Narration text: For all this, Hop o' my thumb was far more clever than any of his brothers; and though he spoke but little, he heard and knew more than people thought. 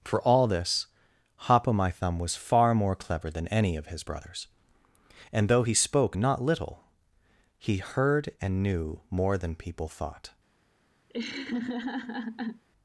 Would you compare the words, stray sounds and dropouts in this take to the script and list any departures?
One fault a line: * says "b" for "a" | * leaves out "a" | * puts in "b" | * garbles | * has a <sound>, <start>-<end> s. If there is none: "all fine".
* says "not" for "but"
* has a laugh, 11.1-12.6 s